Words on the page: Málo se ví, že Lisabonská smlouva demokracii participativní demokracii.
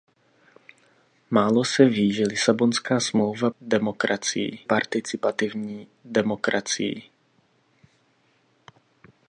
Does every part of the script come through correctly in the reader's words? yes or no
yes